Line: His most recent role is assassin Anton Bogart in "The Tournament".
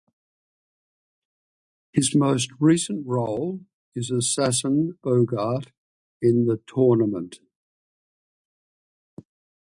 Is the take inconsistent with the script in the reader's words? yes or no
yes